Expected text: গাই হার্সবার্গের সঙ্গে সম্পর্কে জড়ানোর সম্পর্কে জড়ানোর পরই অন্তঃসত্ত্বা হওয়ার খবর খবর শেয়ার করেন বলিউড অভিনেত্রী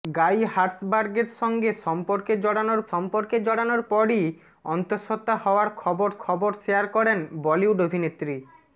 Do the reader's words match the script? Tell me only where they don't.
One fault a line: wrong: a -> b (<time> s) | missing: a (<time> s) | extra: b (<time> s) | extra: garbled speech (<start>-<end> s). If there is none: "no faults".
no faults